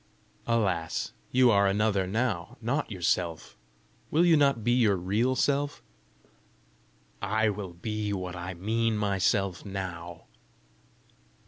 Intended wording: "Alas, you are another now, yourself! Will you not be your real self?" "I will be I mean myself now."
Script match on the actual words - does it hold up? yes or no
no